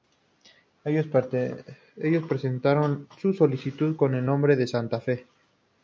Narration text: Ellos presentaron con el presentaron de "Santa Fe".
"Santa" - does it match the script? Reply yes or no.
yes